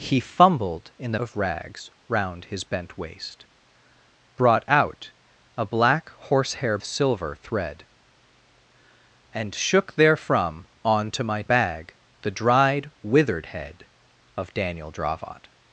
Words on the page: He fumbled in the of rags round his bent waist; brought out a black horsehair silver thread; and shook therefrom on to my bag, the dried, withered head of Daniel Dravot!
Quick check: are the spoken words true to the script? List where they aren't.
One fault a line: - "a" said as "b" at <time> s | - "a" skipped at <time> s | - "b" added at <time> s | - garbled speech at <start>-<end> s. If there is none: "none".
none